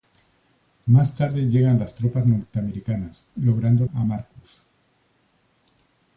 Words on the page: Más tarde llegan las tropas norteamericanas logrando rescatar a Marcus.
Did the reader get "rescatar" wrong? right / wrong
wrong